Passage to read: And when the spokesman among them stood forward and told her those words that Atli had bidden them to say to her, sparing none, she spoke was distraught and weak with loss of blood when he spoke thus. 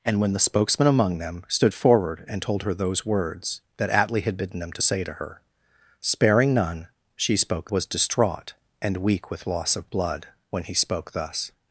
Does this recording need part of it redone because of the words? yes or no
no